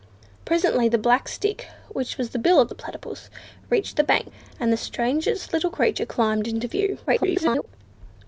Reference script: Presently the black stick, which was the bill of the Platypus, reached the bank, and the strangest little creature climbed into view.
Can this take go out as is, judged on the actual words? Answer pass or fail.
fail